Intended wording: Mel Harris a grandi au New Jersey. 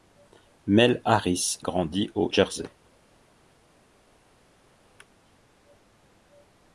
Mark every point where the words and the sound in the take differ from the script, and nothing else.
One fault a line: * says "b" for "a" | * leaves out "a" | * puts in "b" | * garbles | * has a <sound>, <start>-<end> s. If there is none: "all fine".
* leaves out "a"
* leaves out "New"